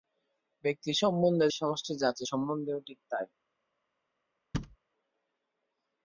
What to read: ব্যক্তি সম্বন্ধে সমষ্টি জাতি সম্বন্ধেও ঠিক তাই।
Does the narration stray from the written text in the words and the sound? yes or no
yes